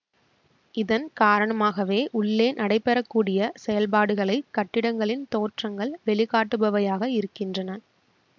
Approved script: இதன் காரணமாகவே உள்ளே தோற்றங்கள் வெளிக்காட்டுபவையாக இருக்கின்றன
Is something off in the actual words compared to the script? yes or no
yes